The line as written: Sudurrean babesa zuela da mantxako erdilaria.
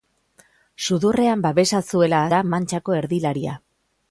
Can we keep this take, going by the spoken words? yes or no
yes